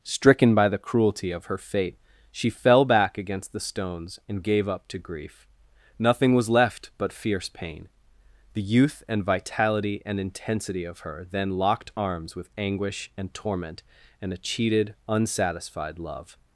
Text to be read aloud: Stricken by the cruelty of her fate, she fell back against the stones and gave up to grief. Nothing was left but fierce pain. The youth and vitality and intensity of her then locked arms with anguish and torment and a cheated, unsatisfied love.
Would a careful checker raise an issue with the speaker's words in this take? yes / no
no